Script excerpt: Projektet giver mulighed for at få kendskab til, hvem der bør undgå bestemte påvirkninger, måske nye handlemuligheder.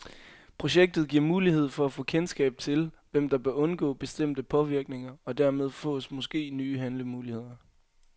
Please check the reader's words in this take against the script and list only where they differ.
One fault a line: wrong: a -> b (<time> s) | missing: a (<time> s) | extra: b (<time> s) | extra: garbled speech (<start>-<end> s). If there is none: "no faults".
extra: og dermed fås (5.2 s)